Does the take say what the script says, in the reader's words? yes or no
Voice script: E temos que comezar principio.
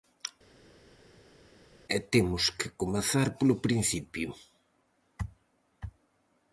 no